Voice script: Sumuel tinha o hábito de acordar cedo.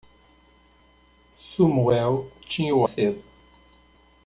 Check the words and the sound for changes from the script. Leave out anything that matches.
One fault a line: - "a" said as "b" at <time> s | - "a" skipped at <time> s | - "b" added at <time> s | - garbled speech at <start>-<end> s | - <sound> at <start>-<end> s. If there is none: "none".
- "hábito de acordar" skipped at 2.9 s